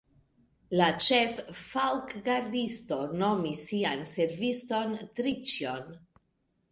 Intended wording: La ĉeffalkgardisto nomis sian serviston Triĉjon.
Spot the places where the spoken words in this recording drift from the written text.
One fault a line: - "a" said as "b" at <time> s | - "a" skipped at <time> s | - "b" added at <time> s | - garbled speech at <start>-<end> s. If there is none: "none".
none